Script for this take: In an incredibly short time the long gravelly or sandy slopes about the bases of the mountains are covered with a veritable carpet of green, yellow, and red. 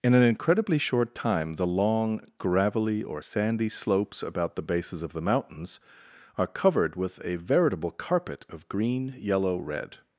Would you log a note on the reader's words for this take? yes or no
yes